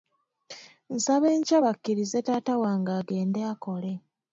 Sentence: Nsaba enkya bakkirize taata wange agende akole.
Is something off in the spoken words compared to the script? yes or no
no